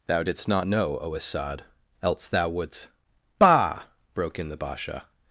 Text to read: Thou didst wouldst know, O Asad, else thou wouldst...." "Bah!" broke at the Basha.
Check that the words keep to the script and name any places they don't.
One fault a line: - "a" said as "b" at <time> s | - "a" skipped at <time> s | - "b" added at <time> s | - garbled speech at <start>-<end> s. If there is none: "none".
- "wouldst" said as "not" at 0.5 s
- "at" said as "in" at 4.4 s